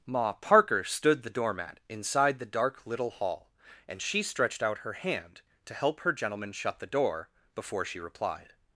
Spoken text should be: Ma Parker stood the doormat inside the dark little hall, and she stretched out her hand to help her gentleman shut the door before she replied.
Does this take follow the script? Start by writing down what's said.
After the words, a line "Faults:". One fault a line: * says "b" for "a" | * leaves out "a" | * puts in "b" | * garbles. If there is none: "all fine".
Ma Parker stood the doormat inside the dark little hall, and she stretched out her hand to help her gentleman shut the door before she replied.
Faults:
all fine